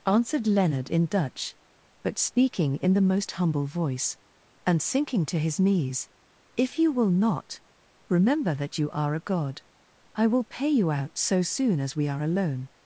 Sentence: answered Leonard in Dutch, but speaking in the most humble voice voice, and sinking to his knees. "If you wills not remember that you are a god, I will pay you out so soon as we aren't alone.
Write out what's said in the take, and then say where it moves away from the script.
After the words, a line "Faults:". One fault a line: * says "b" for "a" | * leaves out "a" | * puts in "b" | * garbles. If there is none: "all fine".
answered Leonard in Dutch, but speaking in the most humble voice, and sinking to his knees. "If you will not remember that you are a god, I will pay you out so soon as we are alone.
Faults:
* leaves out "voice"
* says "will" for "wills"
* says "are" for "aren't"